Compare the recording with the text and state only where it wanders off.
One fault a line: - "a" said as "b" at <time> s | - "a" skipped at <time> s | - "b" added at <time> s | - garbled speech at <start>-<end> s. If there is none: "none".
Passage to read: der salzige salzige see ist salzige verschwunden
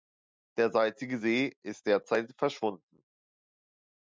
- "salzige" skipped at 1.2 s
- "salzige" said as "derzeit" at 1.9 s